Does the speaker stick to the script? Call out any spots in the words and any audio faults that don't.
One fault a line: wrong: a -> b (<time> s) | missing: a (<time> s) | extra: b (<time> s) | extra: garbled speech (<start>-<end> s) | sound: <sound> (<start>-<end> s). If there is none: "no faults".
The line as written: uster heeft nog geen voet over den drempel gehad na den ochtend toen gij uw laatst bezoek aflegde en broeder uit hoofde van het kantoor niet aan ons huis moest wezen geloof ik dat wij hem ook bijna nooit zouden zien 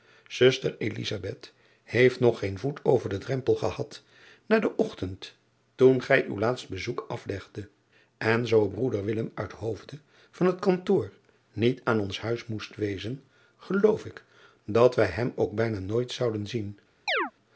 extra: zoo (8.5 s)
sound: chirp (17.1-17.3 s)